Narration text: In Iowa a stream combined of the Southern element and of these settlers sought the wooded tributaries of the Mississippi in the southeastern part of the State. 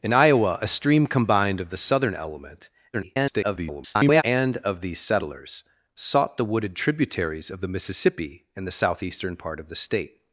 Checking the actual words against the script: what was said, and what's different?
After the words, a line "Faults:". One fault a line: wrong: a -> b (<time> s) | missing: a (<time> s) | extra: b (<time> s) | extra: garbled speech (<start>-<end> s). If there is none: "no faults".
In Iowa a stream combined of the Southern element [garbled] and of these settlers sought the wooded tributaries of the Mississippi in the southeastern part of the State.
Faults:
extra: garbled speech (2.9-4.2 s)